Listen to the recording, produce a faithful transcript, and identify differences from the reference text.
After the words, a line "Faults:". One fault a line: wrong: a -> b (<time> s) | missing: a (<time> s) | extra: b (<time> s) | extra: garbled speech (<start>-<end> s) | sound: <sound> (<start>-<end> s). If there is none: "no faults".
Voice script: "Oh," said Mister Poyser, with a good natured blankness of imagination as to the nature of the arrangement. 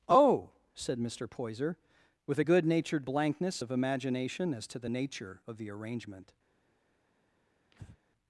"Oh," said Mister Poyser, with a good natured blankness of imagination as to the nature of the arrangement.
Faults:
sound: breath (7.7-8.0 s)